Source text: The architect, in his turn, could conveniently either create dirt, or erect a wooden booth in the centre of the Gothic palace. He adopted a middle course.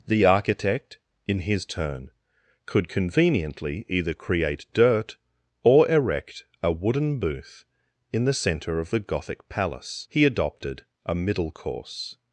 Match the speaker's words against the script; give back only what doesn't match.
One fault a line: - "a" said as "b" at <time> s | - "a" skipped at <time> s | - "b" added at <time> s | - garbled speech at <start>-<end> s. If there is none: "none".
none